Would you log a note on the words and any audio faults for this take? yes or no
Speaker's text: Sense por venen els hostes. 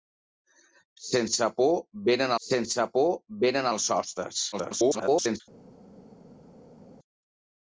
yes